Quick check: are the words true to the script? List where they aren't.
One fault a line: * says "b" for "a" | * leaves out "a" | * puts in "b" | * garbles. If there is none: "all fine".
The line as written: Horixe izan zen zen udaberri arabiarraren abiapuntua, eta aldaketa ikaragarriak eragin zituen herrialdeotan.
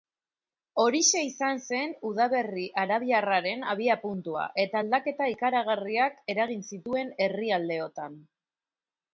* leaves out "zen"